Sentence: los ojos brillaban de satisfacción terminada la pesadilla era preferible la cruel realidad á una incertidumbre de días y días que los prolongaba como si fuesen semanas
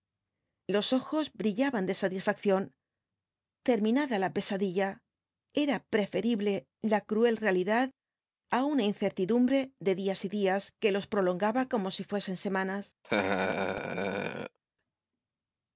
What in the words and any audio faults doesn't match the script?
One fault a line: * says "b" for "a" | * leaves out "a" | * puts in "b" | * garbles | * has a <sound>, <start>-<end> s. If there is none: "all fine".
* has a laugh, 13.0-14.6 s